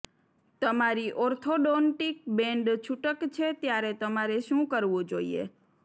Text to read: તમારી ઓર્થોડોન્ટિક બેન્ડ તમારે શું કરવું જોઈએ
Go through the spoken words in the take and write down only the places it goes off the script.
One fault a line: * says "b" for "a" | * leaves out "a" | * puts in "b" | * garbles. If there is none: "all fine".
* puts in "છૂટક છે ત્યારે"